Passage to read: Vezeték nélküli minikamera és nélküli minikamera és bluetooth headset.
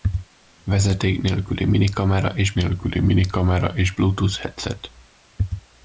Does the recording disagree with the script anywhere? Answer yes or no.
no